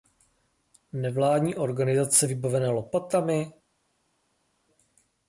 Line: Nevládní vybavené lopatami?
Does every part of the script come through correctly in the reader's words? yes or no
no